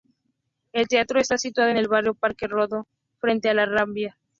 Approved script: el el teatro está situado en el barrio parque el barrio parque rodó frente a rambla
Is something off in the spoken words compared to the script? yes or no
yes